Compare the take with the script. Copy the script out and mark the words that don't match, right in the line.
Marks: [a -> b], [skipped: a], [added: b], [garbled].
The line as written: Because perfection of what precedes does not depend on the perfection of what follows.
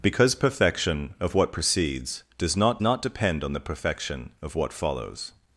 Because perfection of what precedes does not [added: not] depend on the perfection of what follows.